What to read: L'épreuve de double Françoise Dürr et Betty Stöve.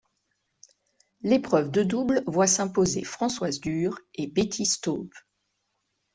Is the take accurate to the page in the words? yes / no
no